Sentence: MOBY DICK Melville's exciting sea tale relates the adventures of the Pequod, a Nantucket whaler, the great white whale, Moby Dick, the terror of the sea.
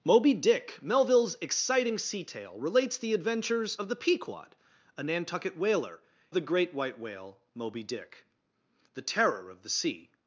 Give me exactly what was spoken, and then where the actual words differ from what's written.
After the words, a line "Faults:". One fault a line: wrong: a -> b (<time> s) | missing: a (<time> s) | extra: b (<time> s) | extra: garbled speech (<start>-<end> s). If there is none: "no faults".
MOBY DICK Melville's exciting sea tale relates the adventures of the Pequod, a Nantucket whaler, the great white whale, Moby Dick, the terror of the sea.
Faults:
no faults